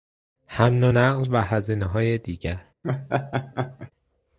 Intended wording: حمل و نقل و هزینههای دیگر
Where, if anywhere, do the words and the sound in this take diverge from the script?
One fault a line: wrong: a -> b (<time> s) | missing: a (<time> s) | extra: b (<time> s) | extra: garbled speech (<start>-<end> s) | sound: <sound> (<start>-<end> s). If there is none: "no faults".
sound: laugh (2.8-3.9 s)